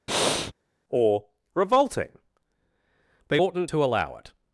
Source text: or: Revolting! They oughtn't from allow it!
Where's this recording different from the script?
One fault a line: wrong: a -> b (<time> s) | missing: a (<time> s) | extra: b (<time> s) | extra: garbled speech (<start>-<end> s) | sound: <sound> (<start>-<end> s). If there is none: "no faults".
sound: breath (0.1-0.5 s)
wrong: from -> to (3.7 s)